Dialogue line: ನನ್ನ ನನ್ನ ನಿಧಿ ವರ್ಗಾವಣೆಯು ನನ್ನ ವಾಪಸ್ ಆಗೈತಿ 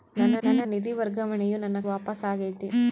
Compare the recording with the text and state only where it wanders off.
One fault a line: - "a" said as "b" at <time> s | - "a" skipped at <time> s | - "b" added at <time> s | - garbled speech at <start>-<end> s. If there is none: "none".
none